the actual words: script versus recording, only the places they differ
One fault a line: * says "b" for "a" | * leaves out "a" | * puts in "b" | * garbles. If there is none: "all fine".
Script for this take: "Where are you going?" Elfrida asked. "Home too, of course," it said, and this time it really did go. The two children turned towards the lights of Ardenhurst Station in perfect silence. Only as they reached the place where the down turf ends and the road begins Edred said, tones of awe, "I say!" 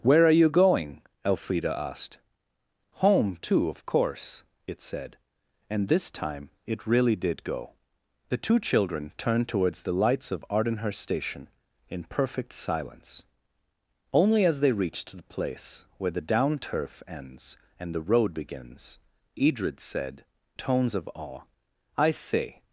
all fine